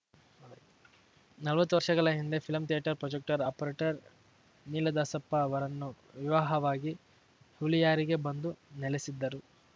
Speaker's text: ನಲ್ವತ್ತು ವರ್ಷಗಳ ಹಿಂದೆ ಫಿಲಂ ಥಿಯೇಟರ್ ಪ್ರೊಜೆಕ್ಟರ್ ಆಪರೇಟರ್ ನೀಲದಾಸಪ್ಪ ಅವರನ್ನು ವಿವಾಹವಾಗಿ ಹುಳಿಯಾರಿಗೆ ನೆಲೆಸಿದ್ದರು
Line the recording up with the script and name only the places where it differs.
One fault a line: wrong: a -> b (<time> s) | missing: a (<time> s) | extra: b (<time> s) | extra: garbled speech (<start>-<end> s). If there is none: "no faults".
extra: ಬಂದು (8.3 s)